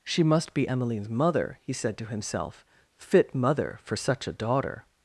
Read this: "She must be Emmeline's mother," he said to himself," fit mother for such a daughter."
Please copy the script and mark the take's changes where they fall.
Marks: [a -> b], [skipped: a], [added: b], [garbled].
"She must be Emmeline's mother," he said to himself," fit mother for such a daughter."